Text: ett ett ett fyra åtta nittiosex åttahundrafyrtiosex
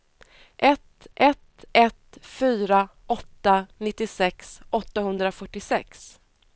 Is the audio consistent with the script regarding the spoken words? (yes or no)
yes